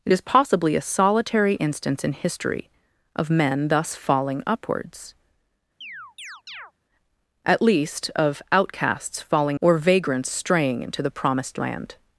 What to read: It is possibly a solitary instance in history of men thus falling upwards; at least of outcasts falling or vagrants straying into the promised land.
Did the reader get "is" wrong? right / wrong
right